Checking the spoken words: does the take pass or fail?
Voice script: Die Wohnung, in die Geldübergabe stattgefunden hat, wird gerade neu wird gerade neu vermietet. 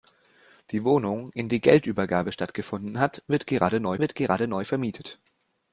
pass